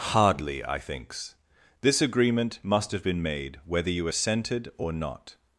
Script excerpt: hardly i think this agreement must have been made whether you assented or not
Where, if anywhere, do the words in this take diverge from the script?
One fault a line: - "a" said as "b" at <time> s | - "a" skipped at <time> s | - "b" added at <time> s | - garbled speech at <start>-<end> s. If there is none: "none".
- "think" said as "thinks" at 0.8 s